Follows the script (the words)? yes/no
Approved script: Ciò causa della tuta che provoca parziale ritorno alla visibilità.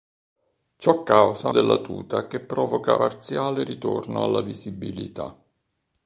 yes